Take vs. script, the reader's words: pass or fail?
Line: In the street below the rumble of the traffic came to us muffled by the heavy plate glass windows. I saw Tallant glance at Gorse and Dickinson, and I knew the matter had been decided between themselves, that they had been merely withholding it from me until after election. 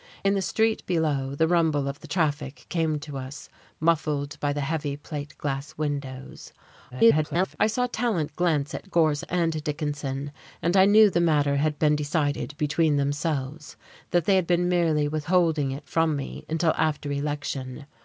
fail